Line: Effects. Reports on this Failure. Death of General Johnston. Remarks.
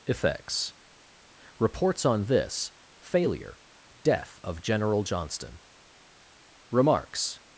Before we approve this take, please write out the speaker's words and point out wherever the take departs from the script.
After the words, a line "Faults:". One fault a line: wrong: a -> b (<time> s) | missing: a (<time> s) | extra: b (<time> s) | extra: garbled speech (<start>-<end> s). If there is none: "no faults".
Effects. Reports on this Failure. Death of General Johnston. Remarks.
Faults:
no faults